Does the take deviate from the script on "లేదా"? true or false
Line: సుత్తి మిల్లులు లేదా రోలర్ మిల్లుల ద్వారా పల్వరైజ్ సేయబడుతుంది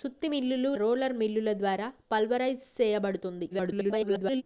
true